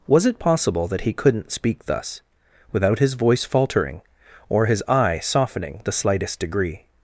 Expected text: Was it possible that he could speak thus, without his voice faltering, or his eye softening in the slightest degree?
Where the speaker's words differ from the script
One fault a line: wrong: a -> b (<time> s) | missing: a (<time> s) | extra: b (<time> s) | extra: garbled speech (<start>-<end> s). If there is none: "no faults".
wrong: could -> couldn't (1.1 s)
missing: in (5.8 s)